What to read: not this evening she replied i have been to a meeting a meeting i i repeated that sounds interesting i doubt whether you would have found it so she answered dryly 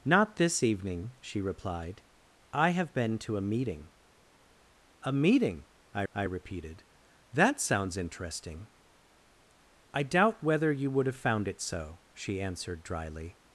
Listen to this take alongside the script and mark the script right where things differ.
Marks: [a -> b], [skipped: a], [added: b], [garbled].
not this evening she replied i have been to a meeting a meeting i i repeated that sounds interesting i doubt whether you would have found it so she answered dryly